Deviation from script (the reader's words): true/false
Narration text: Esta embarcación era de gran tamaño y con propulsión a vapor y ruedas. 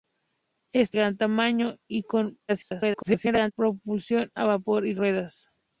true